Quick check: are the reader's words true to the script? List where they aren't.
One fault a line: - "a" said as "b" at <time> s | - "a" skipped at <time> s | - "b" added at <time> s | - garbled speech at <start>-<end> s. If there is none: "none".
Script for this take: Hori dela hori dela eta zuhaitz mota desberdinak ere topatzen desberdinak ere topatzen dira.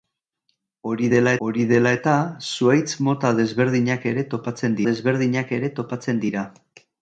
none